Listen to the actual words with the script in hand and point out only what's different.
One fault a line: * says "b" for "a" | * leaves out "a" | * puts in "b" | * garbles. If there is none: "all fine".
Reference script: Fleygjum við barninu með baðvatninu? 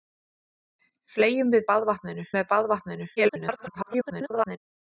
* says "baðvatninu" for "barninu"
* garbles